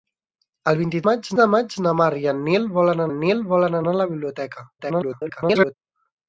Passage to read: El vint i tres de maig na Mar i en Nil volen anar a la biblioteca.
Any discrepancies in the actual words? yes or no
yes